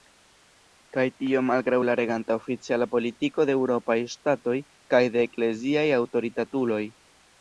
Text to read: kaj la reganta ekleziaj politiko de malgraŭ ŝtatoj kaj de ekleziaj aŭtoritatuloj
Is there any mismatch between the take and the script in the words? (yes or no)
yes